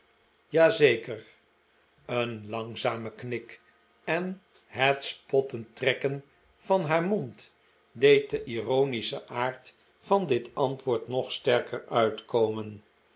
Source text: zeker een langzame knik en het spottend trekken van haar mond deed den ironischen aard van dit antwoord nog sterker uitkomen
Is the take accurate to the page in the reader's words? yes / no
yes